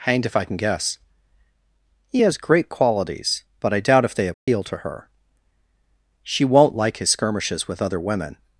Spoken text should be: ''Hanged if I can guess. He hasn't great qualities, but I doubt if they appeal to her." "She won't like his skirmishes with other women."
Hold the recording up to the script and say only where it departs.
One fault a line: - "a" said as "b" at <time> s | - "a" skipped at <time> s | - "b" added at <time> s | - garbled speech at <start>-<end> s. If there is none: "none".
- "hasn't" said as "has" at 2.2 s